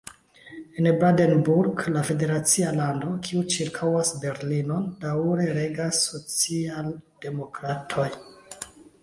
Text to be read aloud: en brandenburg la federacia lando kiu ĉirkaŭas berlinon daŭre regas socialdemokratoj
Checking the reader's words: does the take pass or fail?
pass